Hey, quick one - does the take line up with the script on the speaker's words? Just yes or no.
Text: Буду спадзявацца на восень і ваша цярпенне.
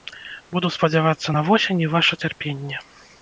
yes